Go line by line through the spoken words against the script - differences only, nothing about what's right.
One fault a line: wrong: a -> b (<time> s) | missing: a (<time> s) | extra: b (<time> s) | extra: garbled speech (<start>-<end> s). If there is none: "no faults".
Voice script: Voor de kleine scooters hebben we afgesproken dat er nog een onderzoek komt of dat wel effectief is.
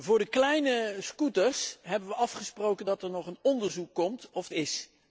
missing: dat wel effectief (4.5 s)